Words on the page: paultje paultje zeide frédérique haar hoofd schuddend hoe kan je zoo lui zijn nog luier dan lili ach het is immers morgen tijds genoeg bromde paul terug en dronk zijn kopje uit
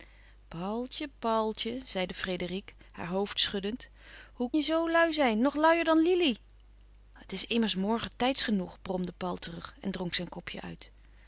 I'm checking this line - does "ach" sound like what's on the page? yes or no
no